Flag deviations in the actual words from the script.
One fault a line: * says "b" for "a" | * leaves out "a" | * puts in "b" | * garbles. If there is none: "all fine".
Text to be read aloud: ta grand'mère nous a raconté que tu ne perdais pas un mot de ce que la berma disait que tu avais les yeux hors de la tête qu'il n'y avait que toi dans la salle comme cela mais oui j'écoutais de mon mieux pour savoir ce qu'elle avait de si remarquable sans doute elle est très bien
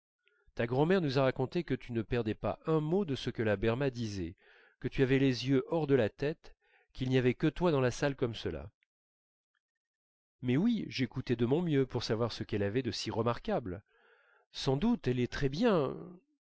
all fine